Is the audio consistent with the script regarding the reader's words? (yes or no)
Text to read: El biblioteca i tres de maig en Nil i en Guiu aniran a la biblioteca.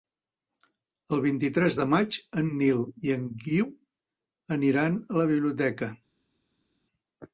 no